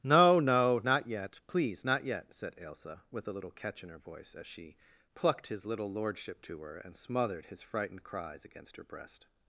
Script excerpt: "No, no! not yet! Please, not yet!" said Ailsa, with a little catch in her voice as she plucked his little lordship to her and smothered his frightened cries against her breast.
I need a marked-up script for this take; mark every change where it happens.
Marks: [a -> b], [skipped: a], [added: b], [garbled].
"No, no! not yet! Please, not yet!" said Ailsa, with a little catch in her voice as she plucked his little lordship to her and smothered his frightened cries against her breast.